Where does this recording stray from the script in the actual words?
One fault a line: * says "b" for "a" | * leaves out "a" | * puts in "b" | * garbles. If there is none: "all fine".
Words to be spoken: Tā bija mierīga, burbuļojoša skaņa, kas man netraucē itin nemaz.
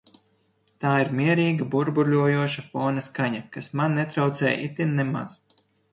* says "ir" for "bija"
* puts in "fona"